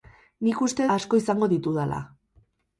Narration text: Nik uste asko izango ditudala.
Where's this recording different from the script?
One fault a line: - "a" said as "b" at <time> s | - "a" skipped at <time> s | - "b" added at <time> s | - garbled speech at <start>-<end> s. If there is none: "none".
none